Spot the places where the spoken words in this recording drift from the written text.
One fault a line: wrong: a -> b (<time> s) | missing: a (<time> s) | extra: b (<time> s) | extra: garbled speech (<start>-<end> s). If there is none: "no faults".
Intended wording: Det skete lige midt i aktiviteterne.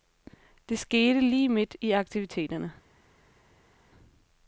no faults